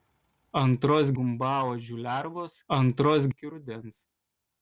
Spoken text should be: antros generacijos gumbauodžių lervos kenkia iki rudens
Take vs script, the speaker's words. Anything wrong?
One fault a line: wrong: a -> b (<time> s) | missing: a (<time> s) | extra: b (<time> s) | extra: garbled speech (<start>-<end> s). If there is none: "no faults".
missing: generacijos (1.1 s)
wrong: kenkia -> antros (2.8 s)